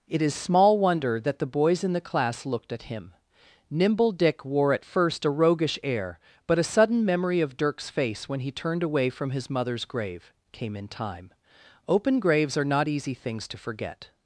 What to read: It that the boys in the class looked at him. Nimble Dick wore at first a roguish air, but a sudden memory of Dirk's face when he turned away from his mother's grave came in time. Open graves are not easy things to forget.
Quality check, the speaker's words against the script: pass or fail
fail